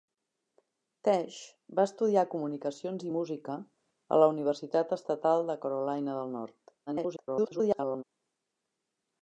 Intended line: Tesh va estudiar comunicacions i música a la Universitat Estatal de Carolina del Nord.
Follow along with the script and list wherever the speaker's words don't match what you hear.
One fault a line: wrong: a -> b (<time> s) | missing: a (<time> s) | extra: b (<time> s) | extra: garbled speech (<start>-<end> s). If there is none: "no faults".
extra: garbled speech (6.9-8.0 s)